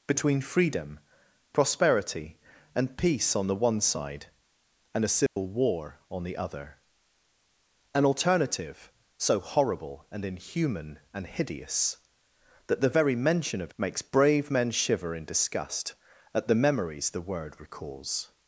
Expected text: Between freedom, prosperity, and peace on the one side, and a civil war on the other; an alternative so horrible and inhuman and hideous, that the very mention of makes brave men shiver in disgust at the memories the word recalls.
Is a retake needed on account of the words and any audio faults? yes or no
yes